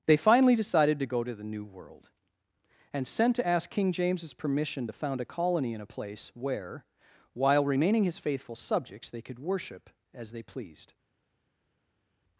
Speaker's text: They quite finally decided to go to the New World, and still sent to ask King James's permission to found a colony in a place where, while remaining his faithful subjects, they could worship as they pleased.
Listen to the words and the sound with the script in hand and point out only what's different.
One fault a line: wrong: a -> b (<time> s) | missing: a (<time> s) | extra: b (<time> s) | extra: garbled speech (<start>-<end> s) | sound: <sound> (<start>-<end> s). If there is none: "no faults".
missing: quite (0.2 s)
missing: still (3.1 s)